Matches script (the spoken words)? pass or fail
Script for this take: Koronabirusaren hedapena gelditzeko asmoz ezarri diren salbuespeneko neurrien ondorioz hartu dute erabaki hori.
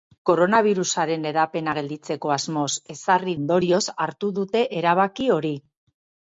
fail